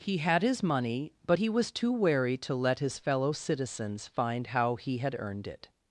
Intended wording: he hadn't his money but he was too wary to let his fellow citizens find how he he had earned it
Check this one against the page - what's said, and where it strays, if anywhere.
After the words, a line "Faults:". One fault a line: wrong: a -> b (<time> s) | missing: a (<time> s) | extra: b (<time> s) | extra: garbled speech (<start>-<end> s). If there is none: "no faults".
he had his money but he was too wary to let his fellow citizens find how he had earned it
Faults:
wrong: hadn't -> had (0.2 s)
missing: he (5.0 s)